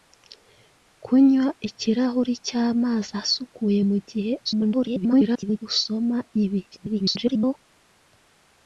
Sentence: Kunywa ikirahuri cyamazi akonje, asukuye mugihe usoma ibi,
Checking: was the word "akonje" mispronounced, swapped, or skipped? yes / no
yes